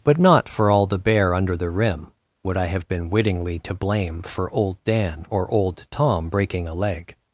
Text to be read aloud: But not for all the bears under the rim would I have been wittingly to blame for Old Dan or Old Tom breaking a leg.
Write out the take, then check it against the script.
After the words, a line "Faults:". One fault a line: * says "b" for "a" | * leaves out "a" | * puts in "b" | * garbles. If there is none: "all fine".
But not for all the bear under the rim would I have been wittingly to blame for Old Dan or Old Tom breaking a leg.
Faults:
* says "bear" for "bears"